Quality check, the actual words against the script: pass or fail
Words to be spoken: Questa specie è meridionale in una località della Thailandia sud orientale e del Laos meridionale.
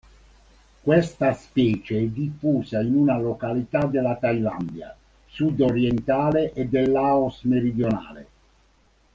fail